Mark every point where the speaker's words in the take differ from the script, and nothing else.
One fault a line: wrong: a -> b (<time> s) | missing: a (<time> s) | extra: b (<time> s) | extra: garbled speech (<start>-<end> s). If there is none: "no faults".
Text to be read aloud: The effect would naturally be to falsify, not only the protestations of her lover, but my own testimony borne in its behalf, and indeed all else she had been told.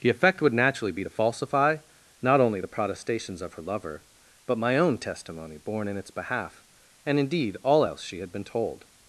no faults